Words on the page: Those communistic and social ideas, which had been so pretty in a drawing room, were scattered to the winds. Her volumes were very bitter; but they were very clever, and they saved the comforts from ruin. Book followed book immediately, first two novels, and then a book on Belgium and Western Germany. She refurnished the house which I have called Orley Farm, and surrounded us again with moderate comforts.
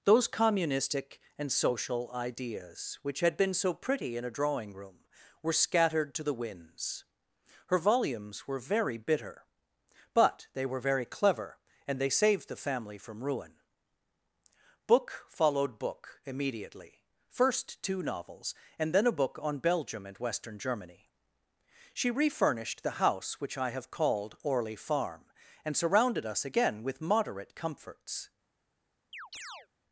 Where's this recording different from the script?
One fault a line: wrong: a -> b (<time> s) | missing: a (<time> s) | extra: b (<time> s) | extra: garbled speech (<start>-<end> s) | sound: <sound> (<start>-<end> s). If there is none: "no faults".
wrong: comforts -> family (12.6 s)
sound: chirp (29.1-29.7 s)